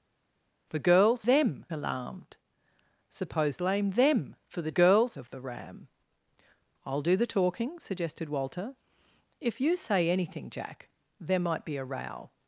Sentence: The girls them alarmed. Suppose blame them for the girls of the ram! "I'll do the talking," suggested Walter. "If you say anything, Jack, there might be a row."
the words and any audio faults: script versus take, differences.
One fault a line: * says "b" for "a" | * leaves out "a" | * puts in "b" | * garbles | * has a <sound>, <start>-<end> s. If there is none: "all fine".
all fine